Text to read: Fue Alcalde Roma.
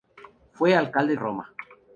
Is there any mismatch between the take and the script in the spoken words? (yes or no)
no